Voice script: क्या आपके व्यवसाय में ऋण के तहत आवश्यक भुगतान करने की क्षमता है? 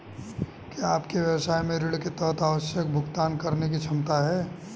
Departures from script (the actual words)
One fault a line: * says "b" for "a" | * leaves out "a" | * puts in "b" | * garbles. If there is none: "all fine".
all fine